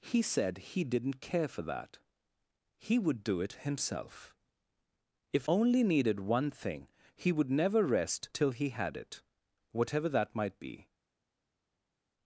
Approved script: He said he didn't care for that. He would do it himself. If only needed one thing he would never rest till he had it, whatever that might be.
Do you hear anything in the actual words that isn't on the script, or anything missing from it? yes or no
no